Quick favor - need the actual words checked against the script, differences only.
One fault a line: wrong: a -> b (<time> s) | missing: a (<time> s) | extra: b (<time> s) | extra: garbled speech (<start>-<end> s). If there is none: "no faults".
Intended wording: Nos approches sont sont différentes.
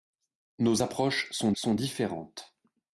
no faults